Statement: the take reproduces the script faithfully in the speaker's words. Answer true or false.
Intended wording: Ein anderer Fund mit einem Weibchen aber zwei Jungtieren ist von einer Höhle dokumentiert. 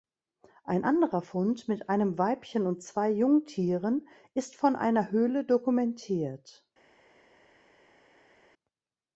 false